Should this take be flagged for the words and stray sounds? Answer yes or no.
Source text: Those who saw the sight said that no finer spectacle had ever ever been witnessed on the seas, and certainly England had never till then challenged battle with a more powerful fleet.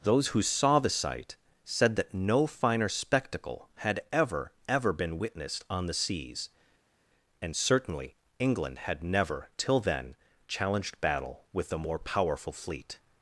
no